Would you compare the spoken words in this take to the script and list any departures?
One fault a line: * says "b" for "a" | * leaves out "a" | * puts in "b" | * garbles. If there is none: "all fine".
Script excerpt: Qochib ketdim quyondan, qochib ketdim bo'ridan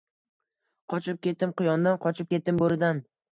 all fine